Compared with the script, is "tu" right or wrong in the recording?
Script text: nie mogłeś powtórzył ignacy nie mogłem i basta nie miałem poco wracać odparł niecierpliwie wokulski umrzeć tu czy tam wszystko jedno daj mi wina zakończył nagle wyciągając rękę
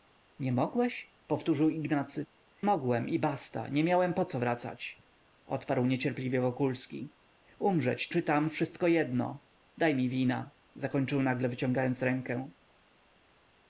wrong